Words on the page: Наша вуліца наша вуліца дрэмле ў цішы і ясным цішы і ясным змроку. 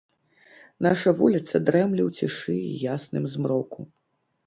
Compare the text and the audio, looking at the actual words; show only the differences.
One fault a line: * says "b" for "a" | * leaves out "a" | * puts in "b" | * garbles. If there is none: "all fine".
* leaves out "наша вуліца"
* leaves out "цішы і ясным"